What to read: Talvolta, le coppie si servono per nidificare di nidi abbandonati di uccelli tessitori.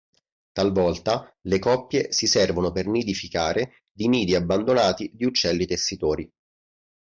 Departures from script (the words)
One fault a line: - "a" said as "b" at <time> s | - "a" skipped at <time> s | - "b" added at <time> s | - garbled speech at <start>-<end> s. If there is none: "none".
none